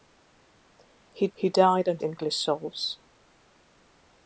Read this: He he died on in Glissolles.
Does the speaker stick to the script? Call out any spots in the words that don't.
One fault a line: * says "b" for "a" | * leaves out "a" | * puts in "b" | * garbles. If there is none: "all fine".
all fine